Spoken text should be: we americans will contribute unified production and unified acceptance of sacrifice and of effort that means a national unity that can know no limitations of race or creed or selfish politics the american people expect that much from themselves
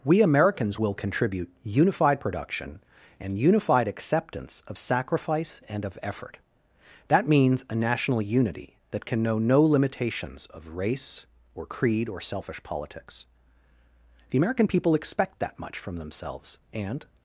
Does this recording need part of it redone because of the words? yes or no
yes